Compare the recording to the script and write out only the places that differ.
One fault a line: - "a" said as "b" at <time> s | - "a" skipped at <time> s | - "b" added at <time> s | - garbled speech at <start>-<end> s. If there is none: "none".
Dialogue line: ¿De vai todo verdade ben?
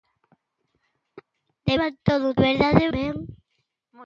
none